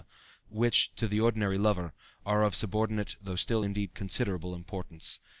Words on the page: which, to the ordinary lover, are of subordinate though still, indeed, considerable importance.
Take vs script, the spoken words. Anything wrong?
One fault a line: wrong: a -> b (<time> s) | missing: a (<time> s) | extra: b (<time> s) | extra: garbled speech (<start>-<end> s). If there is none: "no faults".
no faults